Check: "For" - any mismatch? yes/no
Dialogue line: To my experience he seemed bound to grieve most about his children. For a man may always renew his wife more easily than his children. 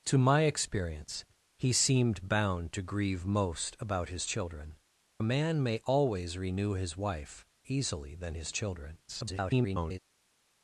yes